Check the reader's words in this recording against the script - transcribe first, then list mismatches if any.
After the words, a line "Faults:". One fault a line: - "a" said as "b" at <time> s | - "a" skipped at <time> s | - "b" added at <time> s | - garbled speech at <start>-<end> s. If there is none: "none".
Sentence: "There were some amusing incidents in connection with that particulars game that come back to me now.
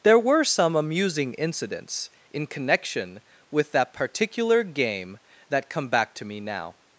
"There were some amusing incidents in connection with that particular game that come back to me now.
Faults:
- "particulars" said as "particular" at 3.9 s